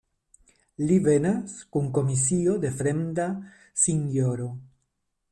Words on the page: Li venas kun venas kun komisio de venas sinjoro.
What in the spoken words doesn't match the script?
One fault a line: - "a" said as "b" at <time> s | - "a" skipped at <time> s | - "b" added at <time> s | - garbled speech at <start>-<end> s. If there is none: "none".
- "venas kun" skipped at 1.9 s
- "venas" said as "fremda" at 2.8 s